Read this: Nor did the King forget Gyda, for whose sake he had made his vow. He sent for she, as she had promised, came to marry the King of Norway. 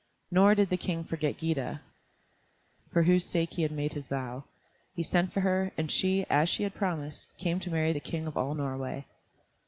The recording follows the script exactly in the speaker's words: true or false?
false